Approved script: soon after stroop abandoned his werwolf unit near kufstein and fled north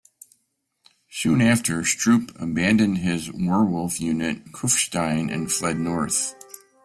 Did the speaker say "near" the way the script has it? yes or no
no